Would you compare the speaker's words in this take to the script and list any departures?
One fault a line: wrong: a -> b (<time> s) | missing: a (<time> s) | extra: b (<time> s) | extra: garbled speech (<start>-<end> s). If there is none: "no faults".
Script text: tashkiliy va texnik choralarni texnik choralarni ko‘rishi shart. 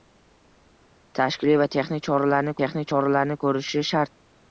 no faults